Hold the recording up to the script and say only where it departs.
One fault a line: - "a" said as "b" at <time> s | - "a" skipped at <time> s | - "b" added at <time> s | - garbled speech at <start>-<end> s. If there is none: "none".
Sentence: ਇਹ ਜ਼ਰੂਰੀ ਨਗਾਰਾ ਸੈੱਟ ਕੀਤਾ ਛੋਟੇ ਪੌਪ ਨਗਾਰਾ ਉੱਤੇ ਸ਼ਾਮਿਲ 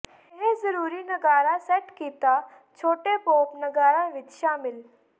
- "ਉੱਤੇ" said as "ਵਿੱਚ" at 4.1 s